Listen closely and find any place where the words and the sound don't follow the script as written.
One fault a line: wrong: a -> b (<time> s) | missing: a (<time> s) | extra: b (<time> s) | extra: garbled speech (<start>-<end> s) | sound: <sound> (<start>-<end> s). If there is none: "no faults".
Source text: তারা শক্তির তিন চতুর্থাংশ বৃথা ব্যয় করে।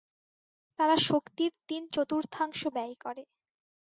missing: বৃথা (2.6 s)